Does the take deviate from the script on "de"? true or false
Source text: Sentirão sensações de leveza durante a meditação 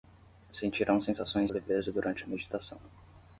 true